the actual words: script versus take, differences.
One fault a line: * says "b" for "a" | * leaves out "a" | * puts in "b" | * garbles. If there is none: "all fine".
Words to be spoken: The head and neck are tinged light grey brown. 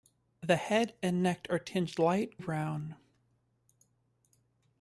* leaves out "grey"